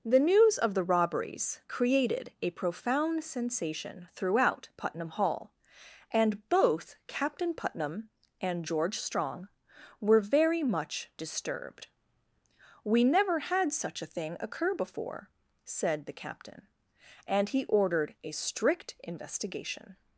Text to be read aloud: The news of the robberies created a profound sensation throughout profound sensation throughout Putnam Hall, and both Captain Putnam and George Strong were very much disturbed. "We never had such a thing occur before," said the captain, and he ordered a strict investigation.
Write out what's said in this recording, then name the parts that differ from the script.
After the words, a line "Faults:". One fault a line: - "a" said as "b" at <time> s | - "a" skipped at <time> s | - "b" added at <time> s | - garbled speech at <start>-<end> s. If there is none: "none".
The news of the robberies created a profound sensation throughout Putnam Hall, and both Captain Putnam and George Strong were very much disturbed. "We never had such a thing occur before," said the captain, and he ordered a strict investigation.
Faults:
- "profound sensation throughout" skipped at 4.7 s